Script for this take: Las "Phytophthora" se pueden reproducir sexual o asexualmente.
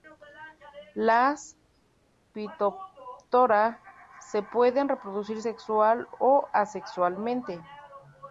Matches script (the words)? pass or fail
pass